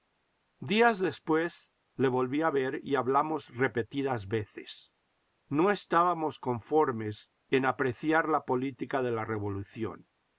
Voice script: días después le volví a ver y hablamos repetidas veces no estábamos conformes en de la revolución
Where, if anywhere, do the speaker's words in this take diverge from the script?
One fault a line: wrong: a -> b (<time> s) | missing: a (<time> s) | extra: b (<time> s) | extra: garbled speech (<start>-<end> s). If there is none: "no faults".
extra: apreciar la política (7.7 s)